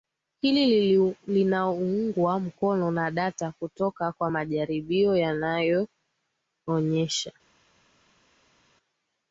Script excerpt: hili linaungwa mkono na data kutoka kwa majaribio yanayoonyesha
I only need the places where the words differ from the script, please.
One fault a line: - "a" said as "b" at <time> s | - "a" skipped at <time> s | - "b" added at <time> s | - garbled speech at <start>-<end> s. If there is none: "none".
none